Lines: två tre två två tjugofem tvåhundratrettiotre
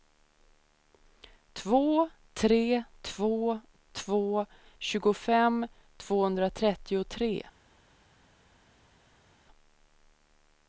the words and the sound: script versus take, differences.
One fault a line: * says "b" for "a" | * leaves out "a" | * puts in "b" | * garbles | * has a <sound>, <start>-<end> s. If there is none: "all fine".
all fine